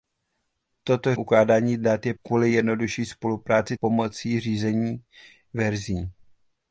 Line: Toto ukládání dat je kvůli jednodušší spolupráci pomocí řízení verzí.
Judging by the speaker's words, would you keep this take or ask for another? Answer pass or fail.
pass